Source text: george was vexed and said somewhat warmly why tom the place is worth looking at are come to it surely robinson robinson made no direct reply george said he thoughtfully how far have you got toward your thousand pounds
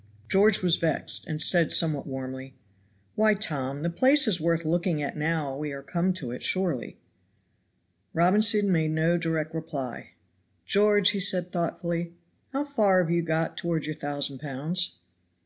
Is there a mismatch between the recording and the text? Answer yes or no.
yes